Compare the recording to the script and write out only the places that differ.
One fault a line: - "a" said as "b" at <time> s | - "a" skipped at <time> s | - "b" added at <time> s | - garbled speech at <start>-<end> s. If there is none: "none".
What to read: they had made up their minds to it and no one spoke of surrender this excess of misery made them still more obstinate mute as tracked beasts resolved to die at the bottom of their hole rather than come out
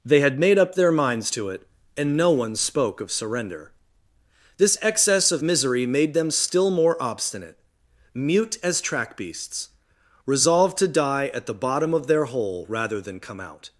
- "tracked" said as "track" at 8.8 s